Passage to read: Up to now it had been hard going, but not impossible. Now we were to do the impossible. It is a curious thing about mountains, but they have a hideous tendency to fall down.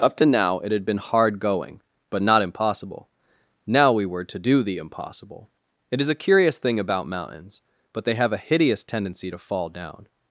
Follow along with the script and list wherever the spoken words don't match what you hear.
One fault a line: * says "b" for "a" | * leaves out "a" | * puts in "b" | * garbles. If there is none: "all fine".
all fine